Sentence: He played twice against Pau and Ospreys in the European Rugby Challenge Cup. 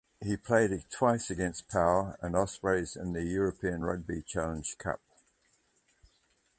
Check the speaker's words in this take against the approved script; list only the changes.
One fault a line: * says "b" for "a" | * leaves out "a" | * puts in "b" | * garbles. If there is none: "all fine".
all fine